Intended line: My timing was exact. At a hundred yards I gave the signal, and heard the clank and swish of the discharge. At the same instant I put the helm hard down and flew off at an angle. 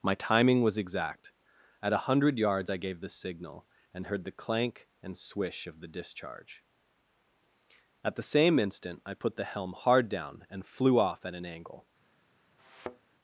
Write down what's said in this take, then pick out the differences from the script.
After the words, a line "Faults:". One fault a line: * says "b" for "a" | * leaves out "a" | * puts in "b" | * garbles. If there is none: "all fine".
My timing was exact. At a hundred yards I gave the signal, and heard the clank and swish of the discharge. At the same instant I put the helm hard down and flew off at an angle.
Faults:
all fine